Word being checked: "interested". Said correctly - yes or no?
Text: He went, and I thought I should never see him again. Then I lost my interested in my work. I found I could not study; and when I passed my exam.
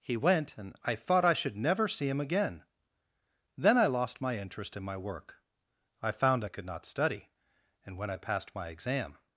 no